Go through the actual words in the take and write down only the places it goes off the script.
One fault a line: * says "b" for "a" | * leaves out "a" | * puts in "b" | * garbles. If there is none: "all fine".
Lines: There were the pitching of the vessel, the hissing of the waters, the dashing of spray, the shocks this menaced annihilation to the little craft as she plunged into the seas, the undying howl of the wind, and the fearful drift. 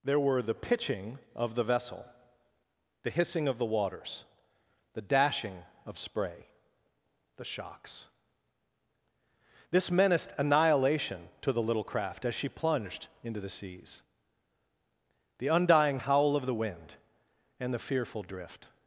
all fine